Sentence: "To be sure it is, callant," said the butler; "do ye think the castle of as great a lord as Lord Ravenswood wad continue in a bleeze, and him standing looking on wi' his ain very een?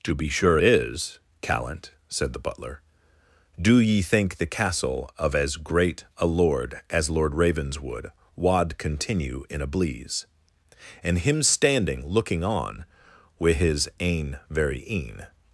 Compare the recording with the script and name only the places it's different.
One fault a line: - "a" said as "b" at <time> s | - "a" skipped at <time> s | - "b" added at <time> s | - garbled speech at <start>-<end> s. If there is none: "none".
- "it" skipped at 0.6 s